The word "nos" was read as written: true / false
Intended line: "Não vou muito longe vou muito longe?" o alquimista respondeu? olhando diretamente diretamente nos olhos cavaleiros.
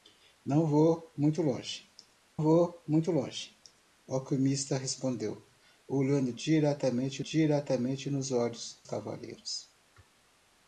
true